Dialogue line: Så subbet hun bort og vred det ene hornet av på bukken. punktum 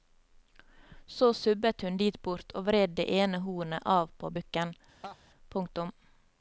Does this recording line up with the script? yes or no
no